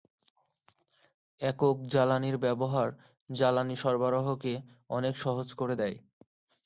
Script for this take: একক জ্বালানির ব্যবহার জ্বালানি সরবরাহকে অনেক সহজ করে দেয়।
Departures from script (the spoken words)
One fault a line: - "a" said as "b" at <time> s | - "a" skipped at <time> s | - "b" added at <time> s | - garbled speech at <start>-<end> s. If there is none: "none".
none